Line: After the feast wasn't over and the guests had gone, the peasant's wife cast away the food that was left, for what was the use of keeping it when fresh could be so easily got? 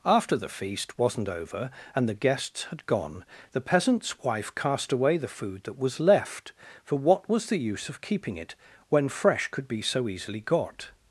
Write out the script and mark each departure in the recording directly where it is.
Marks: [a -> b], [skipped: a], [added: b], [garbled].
After the feast wasn't over and the guests had gone, the peasant's wife cast away the food that was left, for what was the use of keeping it when fresh could be so easily got?